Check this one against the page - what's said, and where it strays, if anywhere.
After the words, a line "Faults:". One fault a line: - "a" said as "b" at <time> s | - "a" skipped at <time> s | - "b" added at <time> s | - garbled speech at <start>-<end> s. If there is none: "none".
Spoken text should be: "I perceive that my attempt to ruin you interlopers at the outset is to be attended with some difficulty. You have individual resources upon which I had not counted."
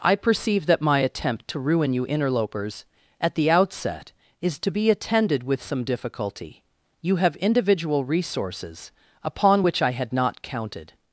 "I perceive that my attempt to ruin you interlopers at the outset is to be attended with some difficulty. You have individual resources upon which I had not counted."
Faults:
none